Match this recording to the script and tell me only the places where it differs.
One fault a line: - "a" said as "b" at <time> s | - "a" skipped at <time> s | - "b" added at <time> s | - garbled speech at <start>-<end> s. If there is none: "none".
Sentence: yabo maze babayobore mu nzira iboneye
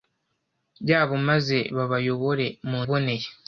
- "nzira" skipped at 2.8 s